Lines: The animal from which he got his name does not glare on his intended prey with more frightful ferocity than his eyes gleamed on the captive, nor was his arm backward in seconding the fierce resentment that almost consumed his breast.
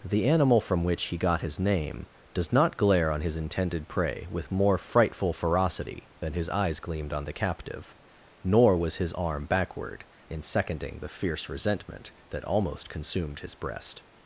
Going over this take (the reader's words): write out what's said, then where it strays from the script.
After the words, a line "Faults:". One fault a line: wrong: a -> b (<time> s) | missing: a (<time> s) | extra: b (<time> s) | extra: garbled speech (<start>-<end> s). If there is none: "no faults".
The animal from which he got his name does not glare on his intended prey with more frightful ferocity than his eyes gleamed on the captive, nor was his arm backward in seconding the fierce resentment that almost consumed his breast.
Faults:
no faults